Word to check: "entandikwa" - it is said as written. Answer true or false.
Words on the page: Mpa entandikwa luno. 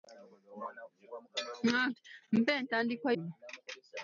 true